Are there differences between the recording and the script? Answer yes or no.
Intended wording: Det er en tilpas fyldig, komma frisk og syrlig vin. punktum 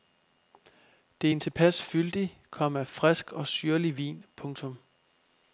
no